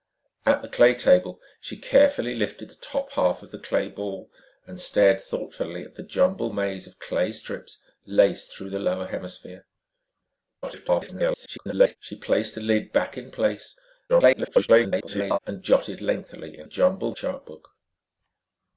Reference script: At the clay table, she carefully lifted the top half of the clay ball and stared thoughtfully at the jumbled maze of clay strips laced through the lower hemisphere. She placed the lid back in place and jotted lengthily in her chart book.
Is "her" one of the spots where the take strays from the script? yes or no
yes